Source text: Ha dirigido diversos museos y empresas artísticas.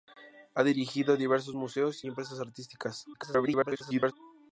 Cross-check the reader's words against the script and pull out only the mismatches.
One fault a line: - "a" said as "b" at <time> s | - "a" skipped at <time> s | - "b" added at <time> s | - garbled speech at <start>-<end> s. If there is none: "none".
- "y" skipped at 2.1 s
- garbled speech at 3.1-4.1 s